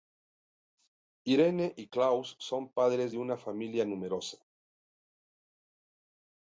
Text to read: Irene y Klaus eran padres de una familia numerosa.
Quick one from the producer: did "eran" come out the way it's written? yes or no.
no